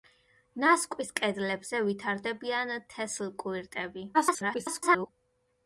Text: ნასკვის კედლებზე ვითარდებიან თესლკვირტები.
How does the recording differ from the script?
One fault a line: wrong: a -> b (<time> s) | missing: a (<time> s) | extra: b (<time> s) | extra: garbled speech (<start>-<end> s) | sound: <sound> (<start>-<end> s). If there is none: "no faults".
extra: garbled speech (4.1-5.1 s)